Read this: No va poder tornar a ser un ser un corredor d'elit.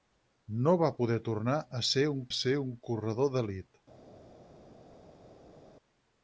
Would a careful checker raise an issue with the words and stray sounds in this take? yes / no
no